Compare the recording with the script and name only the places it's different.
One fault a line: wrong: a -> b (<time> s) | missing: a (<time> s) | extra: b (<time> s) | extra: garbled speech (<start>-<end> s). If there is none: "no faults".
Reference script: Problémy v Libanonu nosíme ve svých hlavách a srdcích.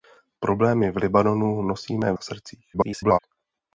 missing: ve svých hlavách (2.1 s)
extra: garbled speech (2.7-3.2 s)